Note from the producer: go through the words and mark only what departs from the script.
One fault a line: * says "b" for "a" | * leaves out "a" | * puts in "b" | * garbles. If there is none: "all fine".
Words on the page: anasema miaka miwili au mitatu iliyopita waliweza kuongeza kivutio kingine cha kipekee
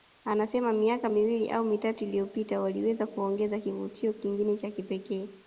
all fine